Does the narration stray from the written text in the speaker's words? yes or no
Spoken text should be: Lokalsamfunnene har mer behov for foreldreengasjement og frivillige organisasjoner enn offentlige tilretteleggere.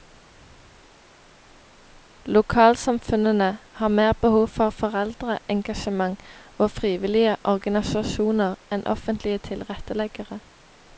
no